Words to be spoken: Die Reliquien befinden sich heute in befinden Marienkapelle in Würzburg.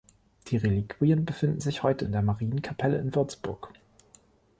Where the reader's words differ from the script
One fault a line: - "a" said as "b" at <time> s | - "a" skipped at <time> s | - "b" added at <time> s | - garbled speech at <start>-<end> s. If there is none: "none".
- "befinden" said as "der" at 2.1 s